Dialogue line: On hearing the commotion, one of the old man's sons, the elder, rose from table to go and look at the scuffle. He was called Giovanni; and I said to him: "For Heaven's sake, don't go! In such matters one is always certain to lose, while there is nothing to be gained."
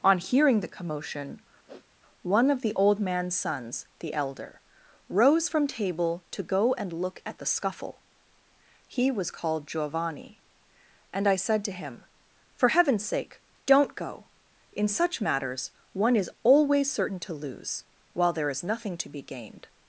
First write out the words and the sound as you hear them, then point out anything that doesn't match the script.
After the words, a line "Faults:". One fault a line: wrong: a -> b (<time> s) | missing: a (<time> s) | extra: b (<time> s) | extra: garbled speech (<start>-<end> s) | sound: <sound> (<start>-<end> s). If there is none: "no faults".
On hearing the commotion, one of the old man's sons, the elder, rose from table to go and look at the scuffle. He was called Giovanni; and I said to him: "For Heaven's sake, don't go! In such matters one is always certain to lose, while there is nothing to be gained."
Faults:
sound: sniff (1.7-1.9 s)